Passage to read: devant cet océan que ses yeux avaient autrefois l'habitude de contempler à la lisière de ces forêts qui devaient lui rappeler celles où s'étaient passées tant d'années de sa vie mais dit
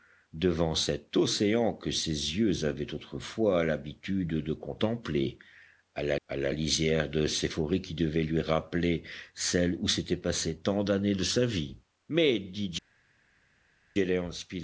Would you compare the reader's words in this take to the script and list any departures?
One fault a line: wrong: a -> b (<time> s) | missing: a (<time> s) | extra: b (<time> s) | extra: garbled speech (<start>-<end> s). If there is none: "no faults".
extra: à la (6.3 s)